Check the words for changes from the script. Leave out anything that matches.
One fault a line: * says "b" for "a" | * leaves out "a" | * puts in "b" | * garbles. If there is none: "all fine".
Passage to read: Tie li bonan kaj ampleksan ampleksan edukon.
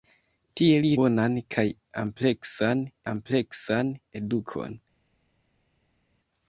all fine